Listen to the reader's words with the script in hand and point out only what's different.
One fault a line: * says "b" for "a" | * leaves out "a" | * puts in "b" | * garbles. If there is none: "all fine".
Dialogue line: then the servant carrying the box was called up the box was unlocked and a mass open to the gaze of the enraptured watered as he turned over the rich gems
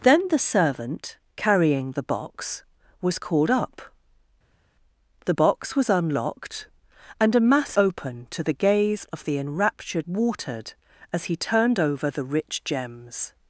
all fine